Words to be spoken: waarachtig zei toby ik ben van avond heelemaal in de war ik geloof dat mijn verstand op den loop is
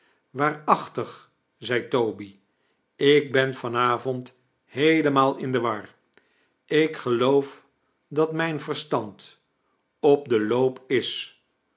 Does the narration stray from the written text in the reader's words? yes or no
no